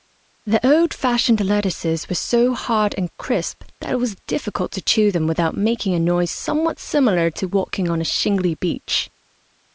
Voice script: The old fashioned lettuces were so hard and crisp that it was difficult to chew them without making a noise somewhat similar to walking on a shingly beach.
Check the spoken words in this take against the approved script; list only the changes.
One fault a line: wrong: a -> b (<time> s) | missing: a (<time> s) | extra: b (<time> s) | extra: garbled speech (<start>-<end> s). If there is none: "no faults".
no faults